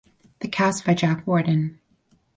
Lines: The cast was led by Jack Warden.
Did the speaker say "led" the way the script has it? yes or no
no